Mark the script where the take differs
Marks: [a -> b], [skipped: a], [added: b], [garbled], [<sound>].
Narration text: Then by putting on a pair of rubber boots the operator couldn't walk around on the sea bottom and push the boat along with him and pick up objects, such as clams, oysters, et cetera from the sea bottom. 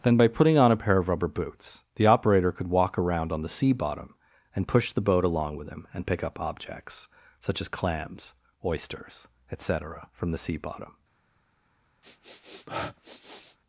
Then by putting on a pair of rubber boots the operator [couldn't -> could] walk around on the sea bottom and push the boat along with him and pick up objects, such as clams, oysters, et cetera from the sea bottom. [sniff]